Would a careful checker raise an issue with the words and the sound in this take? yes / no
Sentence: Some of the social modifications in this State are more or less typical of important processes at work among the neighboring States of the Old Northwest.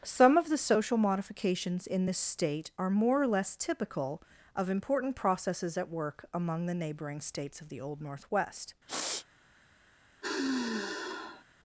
yes